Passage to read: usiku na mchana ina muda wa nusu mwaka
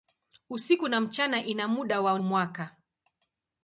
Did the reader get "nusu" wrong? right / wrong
wrong